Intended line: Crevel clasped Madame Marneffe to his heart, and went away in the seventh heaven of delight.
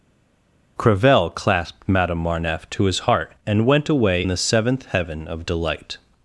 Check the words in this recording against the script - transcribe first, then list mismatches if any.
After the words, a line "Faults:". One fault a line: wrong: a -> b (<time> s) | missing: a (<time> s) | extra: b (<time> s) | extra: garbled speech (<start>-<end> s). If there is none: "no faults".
Crevel clasped Madame Marneffe to his heart, and went away the seventh heaven of delight.
Faults:
missing: in (4.3 s)